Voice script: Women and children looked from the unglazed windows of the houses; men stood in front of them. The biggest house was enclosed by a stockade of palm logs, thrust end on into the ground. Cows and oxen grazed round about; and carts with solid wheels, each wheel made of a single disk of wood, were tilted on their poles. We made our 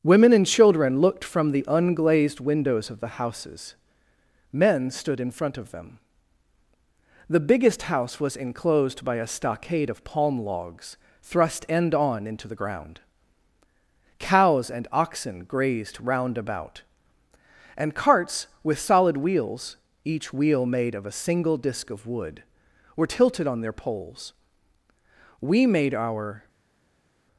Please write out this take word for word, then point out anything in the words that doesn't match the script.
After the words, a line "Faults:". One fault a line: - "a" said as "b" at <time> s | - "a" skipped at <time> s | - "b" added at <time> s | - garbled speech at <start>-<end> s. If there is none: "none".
Women and children looked from the unglazed windows of the houses; men stood in front of them. The biggest house was enclosed by a stockade of palm logs, thrust end on into the ground. Cows and oxen grazed round about; and carts with solid wheels, each wheel made of a single disk of wood, were tilted on their poles. We made our
Faults:
none